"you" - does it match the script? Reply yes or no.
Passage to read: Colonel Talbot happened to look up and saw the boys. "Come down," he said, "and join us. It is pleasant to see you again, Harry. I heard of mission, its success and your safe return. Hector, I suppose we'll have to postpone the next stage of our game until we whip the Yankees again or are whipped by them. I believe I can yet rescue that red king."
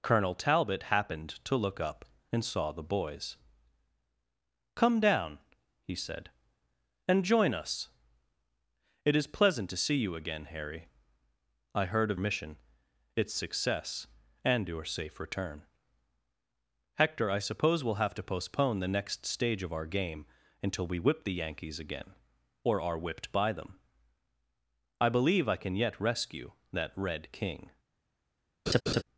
yes